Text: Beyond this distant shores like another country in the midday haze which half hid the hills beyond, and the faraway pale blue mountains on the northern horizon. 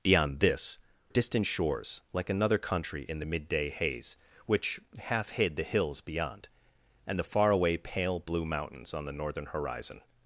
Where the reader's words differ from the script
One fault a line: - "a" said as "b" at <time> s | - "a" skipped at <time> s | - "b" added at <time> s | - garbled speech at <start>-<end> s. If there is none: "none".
none